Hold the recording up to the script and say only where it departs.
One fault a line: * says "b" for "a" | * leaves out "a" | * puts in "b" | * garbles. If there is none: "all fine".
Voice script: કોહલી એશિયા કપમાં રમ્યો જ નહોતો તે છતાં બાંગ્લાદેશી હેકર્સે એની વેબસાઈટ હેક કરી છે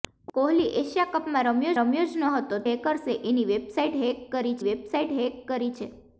* puts in "રમ્યો"
* says "હેકર્સે એની વેબસાઈટ હેક કરી" for "તે છતાં બાંગ્લાદેશી હેકર્સે એની"